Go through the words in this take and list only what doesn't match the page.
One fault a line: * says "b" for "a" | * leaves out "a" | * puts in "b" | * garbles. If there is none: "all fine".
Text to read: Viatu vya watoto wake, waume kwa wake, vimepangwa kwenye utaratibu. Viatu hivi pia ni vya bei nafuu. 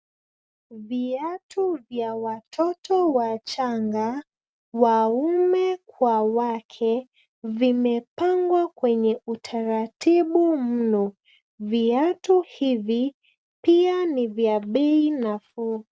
* says "wachanga" for "wake"
* puts in "mno"